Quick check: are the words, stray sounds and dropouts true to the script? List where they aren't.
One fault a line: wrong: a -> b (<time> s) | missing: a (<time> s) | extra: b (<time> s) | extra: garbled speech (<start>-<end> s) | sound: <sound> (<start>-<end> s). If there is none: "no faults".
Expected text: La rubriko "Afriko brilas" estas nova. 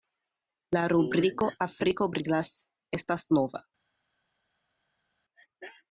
no faults